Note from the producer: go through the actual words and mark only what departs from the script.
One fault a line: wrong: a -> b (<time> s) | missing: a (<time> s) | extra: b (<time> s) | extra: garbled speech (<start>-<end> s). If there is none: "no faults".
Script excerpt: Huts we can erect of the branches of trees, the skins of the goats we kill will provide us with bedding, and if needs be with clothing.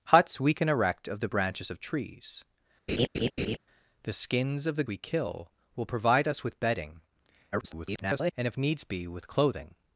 missing: goats (4.8 s)
extra: garbled speech (7.5-8.3 s)